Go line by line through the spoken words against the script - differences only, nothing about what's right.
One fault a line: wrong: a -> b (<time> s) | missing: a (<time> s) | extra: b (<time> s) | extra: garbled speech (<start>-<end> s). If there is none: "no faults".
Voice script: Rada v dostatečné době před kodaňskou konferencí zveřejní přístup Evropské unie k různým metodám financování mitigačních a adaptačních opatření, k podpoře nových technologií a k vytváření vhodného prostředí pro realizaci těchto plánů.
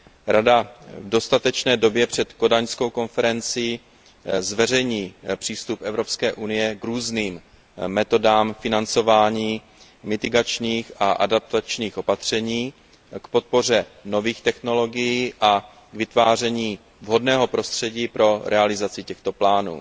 no faults